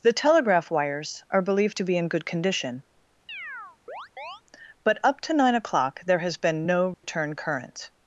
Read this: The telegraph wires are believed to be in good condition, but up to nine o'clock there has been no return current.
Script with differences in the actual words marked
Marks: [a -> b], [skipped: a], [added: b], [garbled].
The telegraph wires are believed to be in good condition, but up to nine o'clock there has been no return current.